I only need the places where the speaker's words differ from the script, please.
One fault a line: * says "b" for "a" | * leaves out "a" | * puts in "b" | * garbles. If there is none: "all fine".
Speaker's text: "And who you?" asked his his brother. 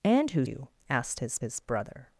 all fine